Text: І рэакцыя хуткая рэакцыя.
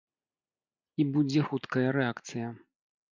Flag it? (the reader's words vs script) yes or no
yes